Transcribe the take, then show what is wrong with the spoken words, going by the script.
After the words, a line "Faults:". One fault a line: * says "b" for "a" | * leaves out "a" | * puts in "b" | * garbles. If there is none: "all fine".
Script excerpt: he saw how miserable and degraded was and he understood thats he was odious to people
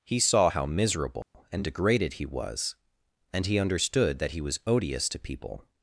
he saw how miserable and degraded he was and he understood that he was odious to people
Faults:
* puts in "he"
* says "that" for "thats"